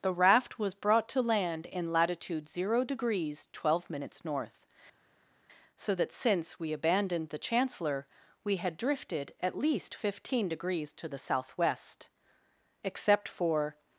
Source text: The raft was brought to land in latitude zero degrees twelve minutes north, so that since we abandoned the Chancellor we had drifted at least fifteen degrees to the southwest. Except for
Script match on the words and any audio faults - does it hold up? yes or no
yes